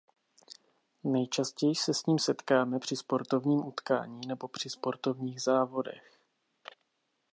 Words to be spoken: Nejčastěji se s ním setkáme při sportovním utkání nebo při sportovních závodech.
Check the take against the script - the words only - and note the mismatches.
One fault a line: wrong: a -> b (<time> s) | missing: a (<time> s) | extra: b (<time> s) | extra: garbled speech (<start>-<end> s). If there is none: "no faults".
no faults